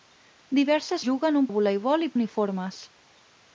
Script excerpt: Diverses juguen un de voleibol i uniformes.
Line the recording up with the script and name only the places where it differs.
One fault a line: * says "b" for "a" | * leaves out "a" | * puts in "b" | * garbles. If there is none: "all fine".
all fine